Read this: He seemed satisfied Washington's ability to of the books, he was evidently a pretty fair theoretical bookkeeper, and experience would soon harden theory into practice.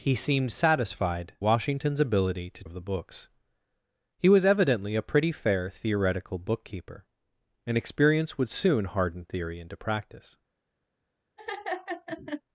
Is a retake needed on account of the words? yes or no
no